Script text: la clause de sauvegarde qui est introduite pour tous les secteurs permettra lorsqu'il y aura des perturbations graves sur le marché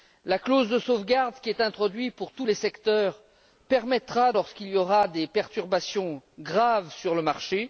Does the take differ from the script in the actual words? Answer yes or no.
no